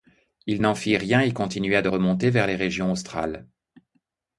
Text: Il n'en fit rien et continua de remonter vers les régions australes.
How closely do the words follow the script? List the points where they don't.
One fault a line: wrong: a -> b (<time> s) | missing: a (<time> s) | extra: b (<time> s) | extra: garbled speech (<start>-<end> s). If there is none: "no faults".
no faults